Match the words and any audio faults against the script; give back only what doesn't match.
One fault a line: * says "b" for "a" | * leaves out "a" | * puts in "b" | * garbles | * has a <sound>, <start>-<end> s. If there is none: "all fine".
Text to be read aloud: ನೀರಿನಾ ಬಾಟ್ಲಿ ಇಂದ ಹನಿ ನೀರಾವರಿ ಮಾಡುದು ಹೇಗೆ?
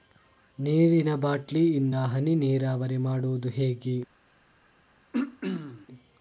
* has a throat clearing, 5.1-5.9 s